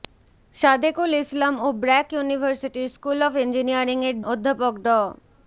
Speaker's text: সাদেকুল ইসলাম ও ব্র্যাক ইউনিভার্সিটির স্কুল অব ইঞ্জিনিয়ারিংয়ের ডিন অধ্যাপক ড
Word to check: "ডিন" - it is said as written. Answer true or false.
false